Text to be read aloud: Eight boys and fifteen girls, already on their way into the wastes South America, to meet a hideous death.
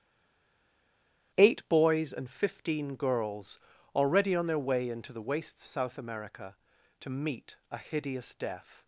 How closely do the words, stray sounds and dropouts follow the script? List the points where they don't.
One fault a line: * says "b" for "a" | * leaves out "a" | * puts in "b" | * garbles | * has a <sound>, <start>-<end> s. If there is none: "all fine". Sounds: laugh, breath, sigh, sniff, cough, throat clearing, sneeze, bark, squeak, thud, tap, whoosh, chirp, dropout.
all fine